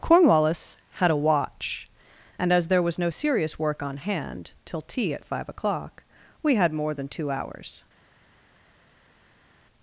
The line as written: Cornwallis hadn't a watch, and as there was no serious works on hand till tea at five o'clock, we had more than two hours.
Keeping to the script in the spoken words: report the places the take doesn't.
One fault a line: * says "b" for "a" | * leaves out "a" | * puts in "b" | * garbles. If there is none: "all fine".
* says "had" for "hadn't"
* says "work" for "works"